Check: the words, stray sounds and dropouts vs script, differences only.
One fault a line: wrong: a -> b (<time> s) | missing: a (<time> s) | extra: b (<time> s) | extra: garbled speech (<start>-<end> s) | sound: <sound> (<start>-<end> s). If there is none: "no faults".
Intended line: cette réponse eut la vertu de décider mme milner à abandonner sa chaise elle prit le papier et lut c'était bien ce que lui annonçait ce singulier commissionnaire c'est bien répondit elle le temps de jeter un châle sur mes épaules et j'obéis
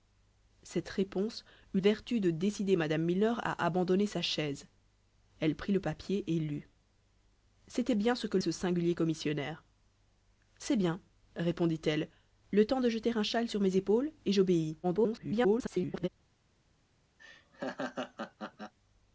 missing: la (1.8 s)
missing: lui annonçait (8.4 s)
extra: garbled speech (14.8-16.1 s)
sound: laugh (17.2-18.7 s)